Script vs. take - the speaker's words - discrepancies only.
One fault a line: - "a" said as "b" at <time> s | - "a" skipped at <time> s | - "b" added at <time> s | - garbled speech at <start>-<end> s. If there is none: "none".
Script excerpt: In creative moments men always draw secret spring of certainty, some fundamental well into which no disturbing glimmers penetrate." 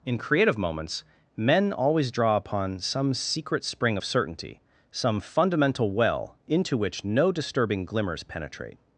- "upon some" added at 2.4 s